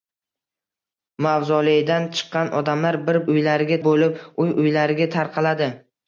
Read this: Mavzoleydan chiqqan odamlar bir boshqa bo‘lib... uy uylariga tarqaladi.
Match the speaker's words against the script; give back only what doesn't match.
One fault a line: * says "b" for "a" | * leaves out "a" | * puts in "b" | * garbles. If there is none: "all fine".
* says "uylariga" for "boshqa"